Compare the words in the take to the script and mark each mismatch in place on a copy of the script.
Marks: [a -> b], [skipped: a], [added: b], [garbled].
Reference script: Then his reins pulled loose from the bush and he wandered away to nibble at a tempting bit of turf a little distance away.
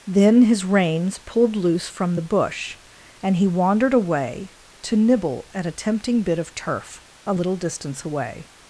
Then his reins pulled loose from the bush and he wandered away to nibble at a tempting bit of turf a little distance away.